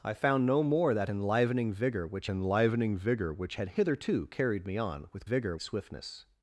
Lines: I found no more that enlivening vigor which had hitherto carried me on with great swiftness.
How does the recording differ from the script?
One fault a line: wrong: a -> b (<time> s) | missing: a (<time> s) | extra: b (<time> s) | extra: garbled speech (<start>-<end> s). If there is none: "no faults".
extra: enlivening vigor which (2.3 s)
wrong: great -> vigor (5.2 s)